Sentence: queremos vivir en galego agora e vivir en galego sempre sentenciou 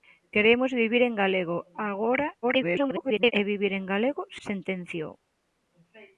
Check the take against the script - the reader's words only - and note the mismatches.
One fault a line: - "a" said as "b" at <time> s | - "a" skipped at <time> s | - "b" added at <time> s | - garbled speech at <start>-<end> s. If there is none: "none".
- garbled speech at 2.4-3.3 s
- "sempre" skipped at 4.2 s